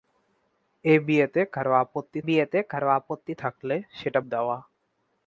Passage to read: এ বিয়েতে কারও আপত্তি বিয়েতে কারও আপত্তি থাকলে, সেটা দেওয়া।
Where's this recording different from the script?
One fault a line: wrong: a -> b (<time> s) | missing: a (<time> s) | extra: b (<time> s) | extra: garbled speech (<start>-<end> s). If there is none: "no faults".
no faults